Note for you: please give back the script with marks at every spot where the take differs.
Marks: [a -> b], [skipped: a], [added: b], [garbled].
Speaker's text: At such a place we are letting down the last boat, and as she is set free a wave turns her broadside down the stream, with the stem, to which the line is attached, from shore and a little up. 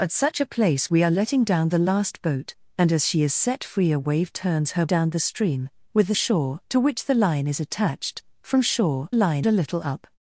At such a place we are letting down the last boat, and as she is set free a wave turns her [skipped: broadside] down the stream, with the [stem, -> shore] to which the line is attached, from shore [and -> line] a little up.